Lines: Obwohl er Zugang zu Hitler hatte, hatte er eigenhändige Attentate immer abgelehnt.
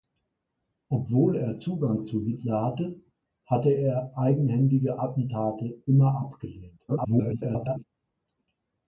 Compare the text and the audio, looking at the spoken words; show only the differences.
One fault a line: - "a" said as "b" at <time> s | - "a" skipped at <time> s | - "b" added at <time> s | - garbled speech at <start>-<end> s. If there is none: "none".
- garbled speech at 6.9-7.8 s